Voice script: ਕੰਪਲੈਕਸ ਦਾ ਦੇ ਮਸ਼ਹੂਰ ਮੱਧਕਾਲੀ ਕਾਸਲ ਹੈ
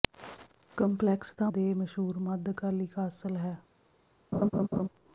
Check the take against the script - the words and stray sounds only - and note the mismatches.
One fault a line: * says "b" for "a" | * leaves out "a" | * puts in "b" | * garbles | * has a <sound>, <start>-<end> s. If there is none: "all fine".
* has a laugh, 4.3-4.9 s